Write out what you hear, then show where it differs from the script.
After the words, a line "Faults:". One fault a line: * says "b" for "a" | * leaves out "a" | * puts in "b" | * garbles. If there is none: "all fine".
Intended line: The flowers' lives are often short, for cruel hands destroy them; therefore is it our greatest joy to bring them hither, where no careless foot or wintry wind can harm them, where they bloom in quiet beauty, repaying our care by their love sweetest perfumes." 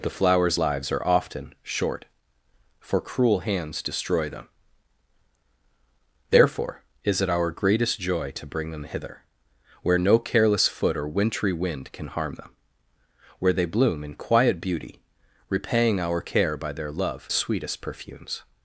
The flowers' lives are often short, for cruel hands destroy them; therefore is it our greatest joy to bring them hither, where no careless foot or wintry wind can harm them, where they bloom in quiet beauty, repaying our care by their love sweetest perfumes."
Faults:
all fine